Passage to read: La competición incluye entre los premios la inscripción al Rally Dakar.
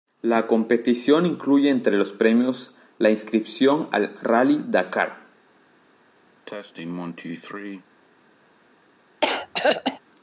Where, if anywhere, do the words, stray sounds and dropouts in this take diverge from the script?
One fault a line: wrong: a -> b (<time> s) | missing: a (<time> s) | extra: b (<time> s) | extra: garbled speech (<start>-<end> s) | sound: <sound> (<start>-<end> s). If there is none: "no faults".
sound: cough (6.5-7.9 s)
sound: throat clearing (9.2-10.0 s)